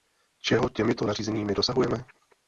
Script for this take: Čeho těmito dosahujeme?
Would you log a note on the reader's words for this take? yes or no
yes